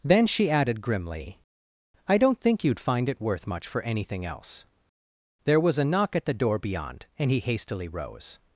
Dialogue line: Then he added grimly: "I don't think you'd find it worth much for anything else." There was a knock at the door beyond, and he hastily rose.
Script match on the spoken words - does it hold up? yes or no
no